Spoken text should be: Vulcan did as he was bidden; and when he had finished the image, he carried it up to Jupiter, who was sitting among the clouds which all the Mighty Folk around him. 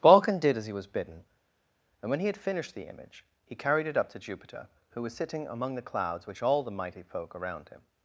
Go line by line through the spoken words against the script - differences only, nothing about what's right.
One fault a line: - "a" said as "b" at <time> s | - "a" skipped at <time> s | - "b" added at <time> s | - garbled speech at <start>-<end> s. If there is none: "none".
none